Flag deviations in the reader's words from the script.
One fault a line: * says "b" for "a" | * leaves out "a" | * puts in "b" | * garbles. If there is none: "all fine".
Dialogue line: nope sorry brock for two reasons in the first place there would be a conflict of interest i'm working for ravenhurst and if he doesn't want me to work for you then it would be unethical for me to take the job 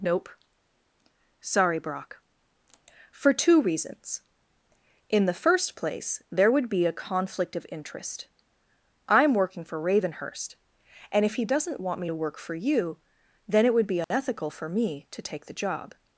all fine